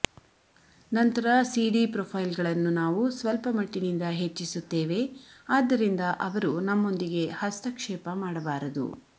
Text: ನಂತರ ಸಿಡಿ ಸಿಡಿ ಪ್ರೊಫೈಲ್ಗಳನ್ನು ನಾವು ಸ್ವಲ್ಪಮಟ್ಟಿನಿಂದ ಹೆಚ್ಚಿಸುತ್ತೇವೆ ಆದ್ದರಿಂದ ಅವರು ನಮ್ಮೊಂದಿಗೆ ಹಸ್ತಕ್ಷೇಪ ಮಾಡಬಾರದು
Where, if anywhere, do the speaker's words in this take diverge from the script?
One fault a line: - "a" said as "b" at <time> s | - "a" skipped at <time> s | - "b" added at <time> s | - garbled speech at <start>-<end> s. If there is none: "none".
- "ಸಿಡಿ" skipped at 1.8 s